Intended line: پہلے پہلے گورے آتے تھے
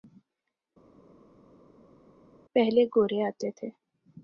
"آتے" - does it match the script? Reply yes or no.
yes